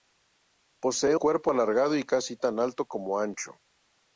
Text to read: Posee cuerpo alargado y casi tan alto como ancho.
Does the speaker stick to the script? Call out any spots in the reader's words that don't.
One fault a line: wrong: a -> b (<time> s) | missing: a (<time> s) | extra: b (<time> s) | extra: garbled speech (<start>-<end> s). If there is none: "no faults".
no faults